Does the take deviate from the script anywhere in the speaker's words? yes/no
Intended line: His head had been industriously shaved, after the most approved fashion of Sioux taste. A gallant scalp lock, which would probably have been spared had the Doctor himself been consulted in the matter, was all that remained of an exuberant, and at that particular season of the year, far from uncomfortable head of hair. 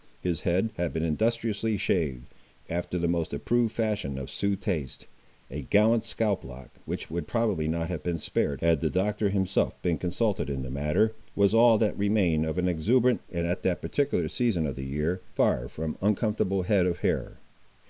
yes